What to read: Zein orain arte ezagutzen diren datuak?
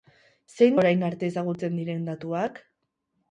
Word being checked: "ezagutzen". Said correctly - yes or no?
yes